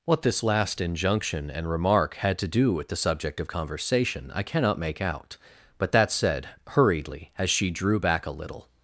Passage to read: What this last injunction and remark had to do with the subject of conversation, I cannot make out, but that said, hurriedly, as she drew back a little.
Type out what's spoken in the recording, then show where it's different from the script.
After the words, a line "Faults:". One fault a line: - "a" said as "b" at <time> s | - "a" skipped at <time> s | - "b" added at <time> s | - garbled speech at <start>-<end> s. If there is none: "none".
What this last injunction and remark had to do with the subject of conversation, I cannot make out, but that said, hurriedly, as she drew back a little.
Faults:
none